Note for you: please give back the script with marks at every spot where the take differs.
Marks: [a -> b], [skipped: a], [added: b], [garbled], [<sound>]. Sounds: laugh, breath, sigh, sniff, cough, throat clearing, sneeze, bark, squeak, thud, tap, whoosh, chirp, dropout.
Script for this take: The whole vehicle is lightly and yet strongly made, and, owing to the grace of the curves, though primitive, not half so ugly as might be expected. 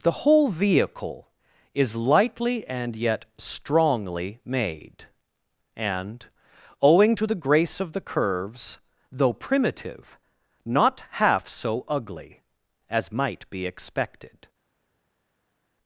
The whole vehicle is lightly and yet strongly made, and, owing to the grace of the curves, though primitive, not half so ugly as might be expected.